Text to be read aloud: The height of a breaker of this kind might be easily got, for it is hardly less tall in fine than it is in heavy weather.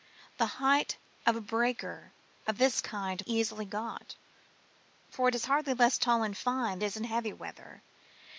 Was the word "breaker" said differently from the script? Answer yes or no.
no